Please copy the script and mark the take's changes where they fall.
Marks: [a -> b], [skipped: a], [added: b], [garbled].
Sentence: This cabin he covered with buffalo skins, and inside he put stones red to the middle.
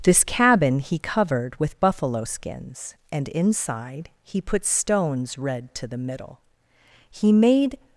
This cabin he covered with buffalo skins, and inside he put stones red to the middle. [added: He made]